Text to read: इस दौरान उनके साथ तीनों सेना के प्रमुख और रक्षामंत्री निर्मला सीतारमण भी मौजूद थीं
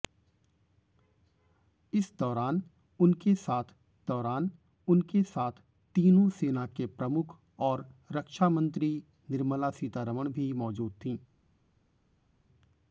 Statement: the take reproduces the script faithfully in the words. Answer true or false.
false